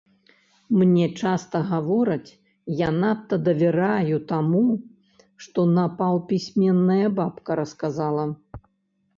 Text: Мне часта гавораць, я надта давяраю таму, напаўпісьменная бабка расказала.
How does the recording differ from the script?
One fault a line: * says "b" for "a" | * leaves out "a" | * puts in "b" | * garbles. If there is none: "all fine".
* puts in "што"